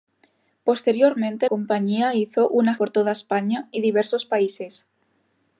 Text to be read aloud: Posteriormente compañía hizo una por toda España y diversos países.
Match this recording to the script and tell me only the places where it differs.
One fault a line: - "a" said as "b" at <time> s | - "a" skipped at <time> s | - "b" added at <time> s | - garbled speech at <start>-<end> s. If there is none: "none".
none